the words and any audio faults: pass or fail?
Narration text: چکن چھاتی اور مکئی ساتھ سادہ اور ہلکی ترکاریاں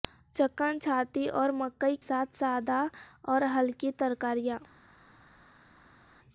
pass